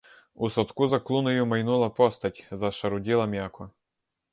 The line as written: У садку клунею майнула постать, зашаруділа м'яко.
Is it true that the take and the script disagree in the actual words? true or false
true